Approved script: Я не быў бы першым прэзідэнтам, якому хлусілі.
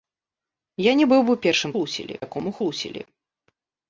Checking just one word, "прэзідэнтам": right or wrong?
wrong